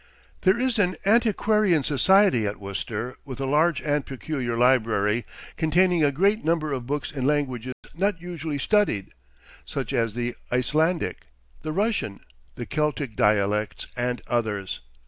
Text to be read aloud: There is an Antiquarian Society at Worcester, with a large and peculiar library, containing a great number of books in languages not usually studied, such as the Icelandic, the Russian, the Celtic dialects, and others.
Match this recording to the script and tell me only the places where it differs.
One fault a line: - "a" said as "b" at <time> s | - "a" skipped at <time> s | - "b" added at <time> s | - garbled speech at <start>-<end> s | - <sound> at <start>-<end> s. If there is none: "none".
- dropout at 7.7-7.8 s